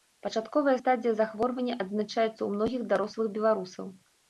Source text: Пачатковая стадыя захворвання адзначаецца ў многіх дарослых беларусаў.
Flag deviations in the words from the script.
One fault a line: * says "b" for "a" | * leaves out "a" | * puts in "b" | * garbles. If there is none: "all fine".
all fine